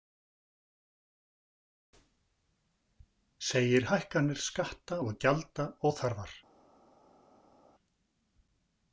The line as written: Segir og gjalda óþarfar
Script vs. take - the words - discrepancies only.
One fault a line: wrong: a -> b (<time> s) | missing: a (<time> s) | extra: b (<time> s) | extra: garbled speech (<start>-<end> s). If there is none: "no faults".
extra: hækkanir skatta (3.9 s)